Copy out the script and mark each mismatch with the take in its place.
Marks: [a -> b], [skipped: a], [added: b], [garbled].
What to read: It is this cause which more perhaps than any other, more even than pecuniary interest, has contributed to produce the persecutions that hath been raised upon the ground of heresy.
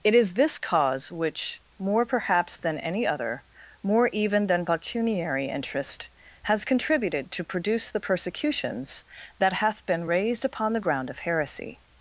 It is this cause which more perhaps than any other, more even than pecuniary interest, has contributed to produce the persecutions that hath been raised upon the ground of heresy.